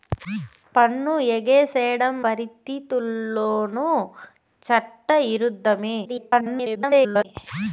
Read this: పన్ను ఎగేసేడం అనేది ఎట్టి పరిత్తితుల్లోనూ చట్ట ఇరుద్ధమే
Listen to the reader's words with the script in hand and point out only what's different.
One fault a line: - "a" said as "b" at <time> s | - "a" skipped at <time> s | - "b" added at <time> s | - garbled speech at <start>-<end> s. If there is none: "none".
- "అనేది ఎట్టి" skipped at 2.1 s
- garbled speech at 6.0-7.3 s